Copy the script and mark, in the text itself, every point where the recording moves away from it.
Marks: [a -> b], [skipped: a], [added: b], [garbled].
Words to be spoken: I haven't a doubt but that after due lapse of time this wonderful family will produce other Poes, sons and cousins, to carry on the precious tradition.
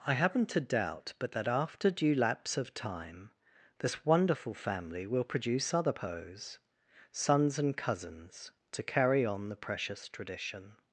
I haven't a doubt but that after due lapse of time this wonderful family will produce other Poes, sons and cousins, to carry on the precious tradition.